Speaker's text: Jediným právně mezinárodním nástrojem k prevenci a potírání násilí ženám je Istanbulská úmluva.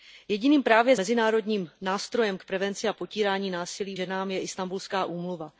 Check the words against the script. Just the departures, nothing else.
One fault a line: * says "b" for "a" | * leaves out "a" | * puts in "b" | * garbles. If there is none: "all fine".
all fine